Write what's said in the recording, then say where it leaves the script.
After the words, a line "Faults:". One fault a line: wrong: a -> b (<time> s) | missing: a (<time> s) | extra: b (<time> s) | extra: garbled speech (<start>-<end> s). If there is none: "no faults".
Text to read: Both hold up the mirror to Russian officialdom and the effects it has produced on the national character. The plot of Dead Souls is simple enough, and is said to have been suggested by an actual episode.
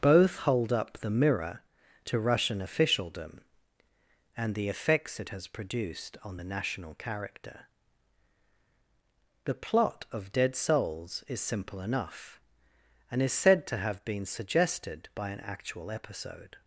Both hold up the mirror to Russian officialdom and the effects it has produced on the national character. The plot of Dead Souls is simple enough, and is said to have been suggested by an actual episode.
Faults:
no faults